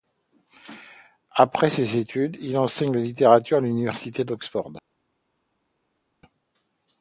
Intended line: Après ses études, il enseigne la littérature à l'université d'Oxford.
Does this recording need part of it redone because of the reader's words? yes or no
no